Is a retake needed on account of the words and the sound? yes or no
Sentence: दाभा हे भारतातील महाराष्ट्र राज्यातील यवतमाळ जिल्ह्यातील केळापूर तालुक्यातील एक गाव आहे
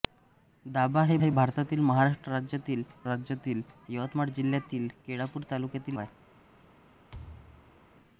yes